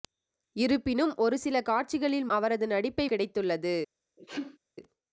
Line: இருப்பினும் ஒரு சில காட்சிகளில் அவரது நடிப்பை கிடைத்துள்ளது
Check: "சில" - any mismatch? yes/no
no